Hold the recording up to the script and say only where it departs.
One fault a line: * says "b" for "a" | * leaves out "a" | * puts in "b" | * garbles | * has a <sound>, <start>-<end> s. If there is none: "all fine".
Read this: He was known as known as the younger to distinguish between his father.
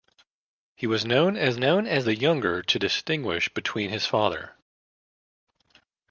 all fine